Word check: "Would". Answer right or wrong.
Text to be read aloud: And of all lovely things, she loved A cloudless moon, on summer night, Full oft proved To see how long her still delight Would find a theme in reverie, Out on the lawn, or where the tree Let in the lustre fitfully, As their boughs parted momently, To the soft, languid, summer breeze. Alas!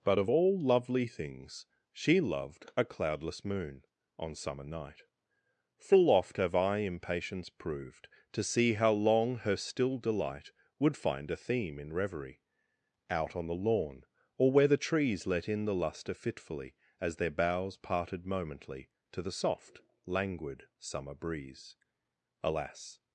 right